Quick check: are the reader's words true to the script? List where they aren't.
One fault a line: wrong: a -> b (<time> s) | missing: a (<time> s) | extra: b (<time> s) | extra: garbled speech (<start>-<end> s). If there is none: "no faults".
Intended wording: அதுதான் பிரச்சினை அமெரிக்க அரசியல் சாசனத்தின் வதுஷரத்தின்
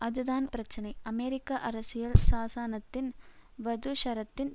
no faults